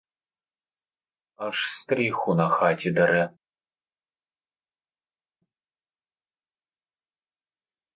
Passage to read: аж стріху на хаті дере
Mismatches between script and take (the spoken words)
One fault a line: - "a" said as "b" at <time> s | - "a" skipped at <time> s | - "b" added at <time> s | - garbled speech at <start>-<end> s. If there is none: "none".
none